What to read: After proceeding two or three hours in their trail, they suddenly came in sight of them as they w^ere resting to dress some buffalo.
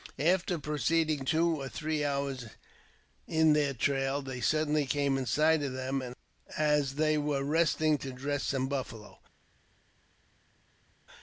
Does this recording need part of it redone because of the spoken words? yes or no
no